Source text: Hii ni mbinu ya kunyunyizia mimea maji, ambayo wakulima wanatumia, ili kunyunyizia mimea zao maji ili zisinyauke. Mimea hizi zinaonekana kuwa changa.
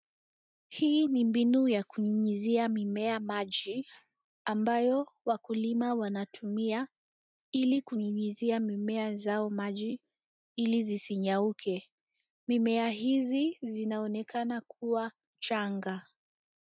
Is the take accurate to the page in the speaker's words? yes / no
yes